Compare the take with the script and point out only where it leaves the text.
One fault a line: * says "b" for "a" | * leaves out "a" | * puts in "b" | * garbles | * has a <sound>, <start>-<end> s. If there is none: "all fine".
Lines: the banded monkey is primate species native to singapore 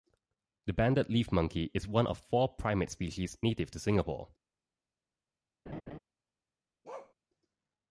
* puts in "leaf"
* puts in "one of four"
* has a laugh, 5.7-6.0 s
* has a bark, 6.8-7.1 s